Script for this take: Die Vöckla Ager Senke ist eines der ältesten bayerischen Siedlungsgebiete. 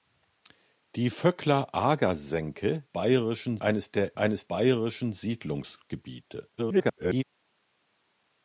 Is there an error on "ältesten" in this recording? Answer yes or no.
yes